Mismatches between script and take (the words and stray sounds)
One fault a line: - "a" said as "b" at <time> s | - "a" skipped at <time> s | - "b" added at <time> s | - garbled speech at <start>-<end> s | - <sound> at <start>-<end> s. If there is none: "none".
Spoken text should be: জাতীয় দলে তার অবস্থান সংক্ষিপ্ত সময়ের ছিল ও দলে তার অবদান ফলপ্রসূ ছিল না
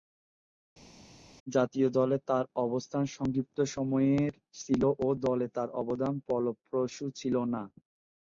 none